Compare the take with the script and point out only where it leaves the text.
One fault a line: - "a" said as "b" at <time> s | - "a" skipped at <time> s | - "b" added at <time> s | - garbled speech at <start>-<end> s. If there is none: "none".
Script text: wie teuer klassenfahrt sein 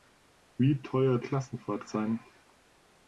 none